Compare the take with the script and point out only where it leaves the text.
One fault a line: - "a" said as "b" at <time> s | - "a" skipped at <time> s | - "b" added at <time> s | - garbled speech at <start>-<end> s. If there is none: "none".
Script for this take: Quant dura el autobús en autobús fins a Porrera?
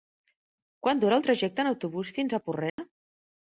- "autobús" said as "trajecte" at 1.3 s